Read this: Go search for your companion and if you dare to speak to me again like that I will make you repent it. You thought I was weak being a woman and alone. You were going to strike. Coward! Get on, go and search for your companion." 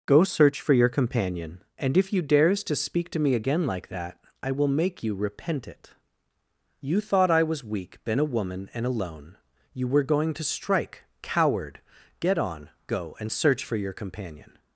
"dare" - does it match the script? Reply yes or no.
no